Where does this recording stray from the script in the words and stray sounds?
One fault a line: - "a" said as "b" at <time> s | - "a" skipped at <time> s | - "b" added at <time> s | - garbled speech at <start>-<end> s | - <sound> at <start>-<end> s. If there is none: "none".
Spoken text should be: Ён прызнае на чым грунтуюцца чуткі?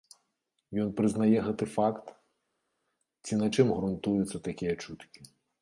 - "гэты факт ці" added at 1.5 s
- "такія" added at 4.5 s